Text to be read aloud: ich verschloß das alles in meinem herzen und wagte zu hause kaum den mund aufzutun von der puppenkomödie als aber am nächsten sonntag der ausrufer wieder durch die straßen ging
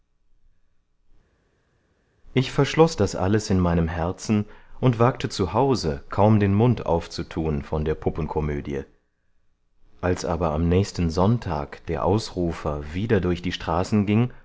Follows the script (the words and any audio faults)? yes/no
yes